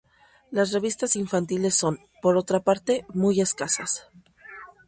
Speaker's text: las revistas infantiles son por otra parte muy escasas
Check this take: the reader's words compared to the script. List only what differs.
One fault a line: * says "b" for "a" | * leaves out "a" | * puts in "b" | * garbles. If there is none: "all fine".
all fine